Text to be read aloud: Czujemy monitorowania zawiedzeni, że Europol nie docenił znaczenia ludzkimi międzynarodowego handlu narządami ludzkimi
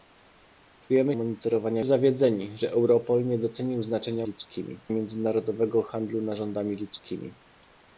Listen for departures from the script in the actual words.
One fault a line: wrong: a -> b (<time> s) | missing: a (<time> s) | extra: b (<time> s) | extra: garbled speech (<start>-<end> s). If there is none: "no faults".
no faults